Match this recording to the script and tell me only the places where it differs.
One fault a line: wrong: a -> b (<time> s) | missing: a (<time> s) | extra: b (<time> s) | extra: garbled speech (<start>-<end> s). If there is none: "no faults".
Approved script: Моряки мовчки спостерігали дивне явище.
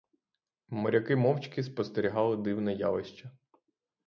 no faults